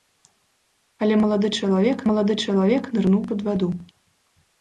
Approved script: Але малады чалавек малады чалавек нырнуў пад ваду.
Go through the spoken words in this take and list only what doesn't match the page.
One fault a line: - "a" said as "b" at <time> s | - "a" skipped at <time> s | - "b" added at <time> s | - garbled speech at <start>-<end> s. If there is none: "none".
none